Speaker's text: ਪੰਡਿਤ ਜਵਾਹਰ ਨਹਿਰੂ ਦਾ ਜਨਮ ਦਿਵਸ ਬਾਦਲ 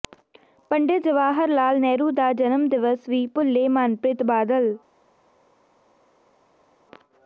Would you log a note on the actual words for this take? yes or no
yes